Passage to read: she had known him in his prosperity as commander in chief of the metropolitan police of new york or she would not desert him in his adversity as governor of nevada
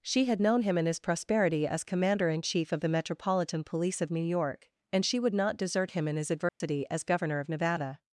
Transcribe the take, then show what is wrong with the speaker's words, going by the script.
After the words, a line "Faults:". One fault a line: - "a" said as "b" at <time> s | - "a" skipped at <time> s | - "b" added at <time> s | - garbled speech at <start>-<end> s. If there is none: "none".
she had known him in his prosperity as commander in chief of the metropolitan police of new york and she would not desert him in his adversity as governor of nevada
Faults:
- "or" said as "and" at 4.9 s